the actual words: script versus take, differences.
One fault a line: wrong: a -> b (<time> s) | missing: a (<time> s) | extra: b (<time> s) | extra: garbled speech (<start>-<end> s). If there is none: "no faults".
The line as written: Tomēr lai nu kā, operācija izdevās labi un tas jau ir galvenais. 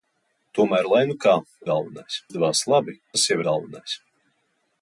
wrong: operācija -> galvenais (1.7 s)
missing: un (3.0 s)
missing: ir (3.4 s)